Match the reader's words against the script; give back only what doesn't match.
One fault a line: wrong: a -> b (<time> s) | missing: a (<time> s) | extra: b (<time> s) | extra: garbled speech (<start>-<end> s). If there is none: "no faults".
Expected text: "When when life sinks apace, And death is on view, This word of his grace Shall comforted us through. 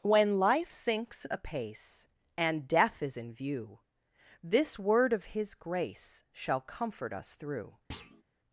missing: when (0.4 s)
wrong: on -> in (3.2 s)
wrong: comforted -> comfort (6.6 s)